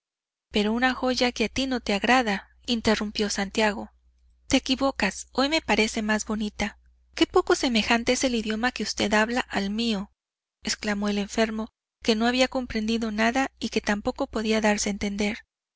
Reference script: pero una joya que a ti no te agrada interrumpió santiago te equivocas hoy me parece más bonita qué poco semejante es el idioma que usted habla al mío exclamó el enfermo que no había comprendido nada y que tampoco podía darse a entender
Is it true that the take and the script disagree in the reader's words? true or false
false